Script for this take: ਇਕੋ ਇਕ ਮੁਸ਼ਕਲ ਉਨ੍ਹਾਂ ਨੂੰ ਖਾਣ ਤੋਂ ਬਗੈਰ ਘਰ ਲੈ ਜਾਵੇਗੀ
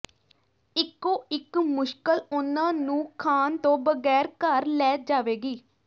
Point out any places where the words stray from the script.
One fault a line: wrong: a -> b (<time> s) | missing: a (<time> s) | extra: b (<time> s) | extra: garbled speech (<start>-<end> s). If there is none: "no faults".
no faults